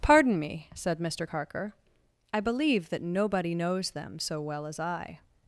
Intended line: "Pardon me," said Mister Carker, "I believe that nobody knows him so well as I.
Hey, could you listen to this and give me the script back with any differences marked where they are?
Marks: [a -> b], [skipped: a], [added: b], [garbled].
"Pardon me," said Mister Carker, "I believe that nobody knows [him -> them] so well as I.